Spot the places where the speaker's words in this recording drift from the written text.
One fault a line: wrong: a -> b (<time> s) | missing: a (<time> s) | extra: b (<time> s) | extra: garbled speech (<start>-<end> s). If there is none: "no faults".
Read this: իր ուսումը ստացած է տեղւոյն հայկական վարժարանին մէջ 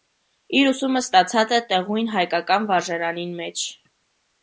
no faults